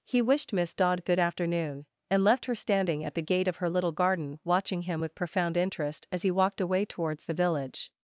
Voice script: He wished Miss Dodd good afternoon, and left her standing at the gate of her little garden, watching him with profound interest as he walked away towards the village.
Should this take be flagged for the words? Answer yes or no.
no